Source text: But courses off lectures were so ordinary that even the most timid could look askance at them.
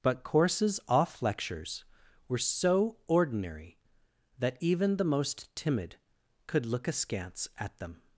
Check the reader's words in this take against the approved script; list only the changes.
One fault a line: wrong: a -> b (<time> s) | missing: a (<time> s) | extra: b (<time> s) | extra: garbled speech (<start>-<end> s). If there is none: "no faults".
no faults